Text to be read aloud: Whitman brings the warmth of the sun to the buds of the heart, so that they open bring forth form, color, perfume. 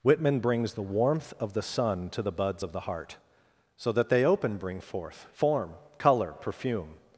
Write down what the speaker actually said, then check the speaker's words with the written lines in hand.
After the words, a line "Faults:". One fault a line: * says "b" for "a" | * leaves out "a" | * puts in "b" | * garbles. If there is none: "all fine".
Whitman brings the warmth of the sun to the buds of the heart, so that they open bring forth form, color, perfume.
Faults:
all fine